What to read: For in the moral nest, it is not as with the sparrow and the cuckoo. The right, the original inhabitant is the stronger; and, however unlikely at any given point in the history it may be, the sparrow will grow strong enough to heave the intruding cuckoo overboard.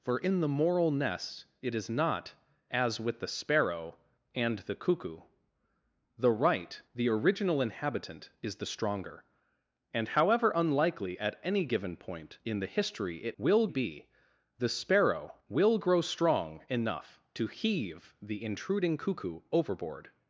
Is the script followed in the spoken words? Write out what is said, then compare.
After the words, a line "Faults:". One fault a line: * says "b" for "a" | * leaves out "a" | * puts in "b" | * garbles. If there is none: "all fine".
For in the moral nest, it is not as with the sparrow and the cuckoo. The right, the original inhabitant is the stronger; and, however unlikely at any given point in the history it will be, the sparrow will grow strong enough to heave the intruding cuckoo overboard.
Faults:
* says "will" for "may"